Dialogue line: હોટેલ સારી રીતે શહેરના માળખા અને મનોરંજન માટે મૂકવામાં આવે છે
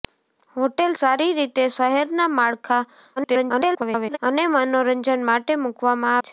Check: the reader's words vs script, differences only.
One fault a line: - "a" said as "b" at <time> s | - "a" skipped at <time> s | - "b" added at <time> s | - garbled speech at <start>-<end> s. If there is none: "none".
- garbled speech at 3.2-4.2 s
- "આવે" skipped at 6.2 s